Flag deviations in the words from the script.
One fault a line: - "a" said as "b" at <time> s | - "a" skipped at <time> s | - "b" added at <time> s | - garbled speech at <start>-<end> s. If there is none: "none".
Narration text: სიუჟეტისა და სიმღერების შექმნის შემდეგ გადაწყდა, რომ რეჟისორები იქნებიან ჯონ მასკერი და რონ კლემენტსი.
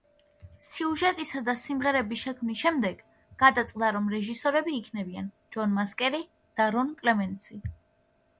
none